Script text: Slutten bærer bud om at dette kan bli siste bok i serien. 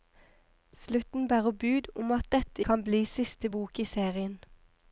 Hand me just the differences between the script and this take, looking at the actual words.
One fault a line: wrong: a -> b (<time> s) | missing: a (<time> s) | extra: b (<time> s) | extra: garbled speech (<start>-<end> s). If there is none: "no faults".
no faults